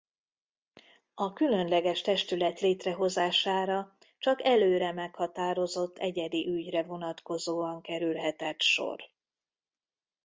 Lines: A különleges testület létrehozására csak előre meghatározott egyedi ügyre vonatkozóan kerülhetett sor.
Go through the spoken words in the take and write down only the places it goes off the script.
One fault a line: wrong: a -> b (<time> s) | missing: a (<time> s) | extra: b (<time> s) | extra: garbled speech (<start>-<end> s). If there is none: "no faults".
no faults